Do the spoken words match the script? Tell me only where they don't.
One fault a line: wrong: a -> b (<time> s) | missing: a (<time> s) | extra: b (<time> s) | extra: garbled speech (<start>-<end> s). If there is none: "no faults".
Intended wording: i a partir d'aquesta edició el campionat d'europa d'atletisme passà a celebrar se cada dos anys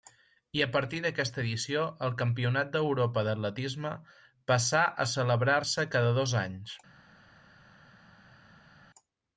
no faults